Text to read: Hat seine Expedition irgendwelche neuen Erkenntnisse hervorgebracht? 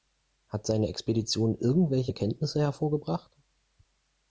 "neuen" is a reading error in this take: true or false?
true